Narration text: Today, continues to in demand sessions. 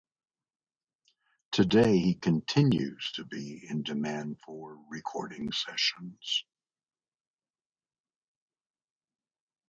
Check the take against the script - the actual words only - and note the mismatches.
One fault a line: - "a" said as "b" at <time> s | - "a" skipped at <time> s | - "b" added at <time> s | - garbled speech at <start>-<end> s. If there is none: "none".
- "he" added at 2.0 s
- "be" added at 3.2 s
- "for recording" added at 4.4 s